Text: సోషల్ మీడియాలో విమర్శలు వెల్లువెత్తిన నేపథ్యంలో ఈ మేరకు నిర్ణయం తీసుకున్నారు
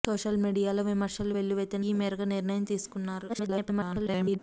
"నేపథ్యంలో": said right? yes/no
no